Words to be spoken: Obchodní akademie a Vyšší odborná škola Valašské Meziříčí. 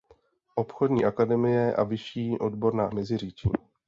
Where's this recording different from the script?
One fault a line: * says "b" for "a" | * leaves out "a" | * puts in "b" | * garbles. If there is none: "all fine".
* leaves out "škola Valašské"